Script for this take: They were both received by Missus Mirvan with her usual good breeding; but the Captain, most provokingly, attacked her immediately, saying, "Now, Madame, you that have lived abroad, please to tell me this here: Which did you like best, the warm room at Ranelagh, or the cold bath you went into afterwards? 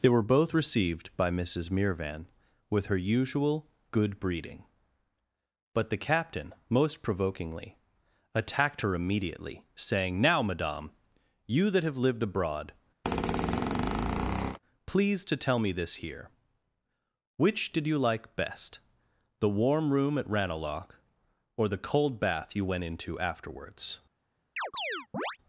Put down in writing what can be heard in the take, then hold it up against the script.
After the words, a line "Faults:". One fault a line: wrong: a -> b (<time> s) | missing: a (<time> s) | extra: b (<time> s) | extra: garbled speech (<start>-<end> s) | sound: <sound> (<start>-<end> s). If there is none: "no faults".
They were both received by Missus Mirvan with her usual good breeding; but the Captain, most provokingly, attacked her immediately, saying, "Now, Madame, you that have lived abroad, please to tell me this here: Which did you like best, the warm room at Ranelagh, or the cold bath you went into afterwards?
Faults:
sound: squeak (13.0-14.6 s)
sound: chirp (24.6-25.4 s)